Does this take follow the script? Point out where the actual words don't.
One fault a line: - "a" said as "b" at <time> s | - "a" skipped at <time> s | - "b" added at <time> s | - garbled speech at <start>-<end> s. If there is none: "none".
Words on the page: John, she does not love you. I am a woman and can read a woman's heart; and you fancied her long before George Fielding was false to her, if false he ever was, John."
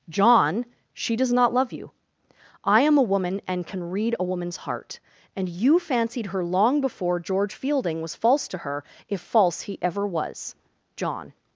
none